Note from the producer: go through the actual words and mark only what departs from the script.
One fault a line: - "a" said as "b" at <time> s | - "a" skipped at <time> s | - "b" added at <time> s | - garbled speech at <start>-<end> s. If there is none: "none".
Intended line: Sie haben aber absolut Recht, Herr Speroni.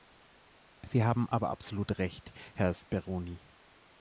none